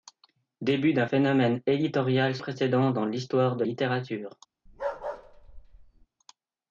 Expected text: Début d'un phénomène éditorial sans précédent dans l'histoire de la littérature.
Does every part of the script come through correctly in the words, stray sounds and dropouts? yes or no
no